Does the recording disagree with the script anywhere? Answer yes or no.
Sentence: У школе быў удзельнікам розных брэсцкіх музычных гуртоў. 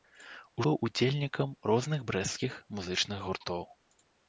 yes